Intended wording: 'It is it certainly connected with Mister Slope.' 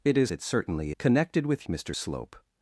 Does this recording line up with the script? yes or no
yes